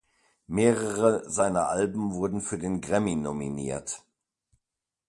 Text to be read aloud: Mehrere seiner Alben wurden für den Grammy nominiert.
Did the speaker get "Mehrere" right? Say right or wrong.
right